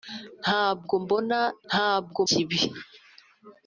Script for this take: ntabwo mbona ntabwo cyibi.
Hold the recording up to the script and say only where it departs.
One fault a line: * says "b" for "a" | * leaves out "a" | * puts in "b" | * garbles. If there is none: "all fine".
all fine